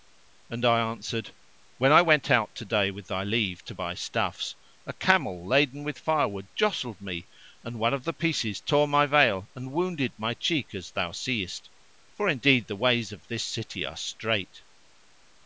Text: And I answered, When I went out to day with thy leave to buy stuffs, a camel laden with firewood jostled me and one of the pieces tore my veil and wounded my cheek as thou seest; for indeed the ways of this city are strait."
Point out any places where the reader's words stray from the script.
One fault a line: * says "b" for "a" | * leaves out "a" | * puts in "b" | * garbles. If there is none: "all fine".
all fine